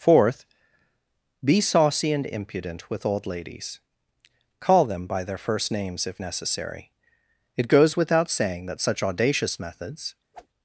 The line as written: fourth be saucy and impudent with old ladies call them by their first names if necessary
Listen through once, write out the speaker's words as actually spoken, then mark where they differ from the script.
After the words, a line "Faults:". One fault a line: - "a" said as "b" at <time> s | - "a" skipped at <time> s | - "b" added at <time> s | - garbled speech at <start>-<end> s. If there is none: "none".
fourth be saucy and impudent with old ladies call them by their first names if necessary it goes without saying that such audacious methods
Faults:
- "it goes without saying that such audacious methods" added at 7.6 s